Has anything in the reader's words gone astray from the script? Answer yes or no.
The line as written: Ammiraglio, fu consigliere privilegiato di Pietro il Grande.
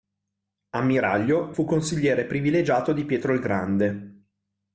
no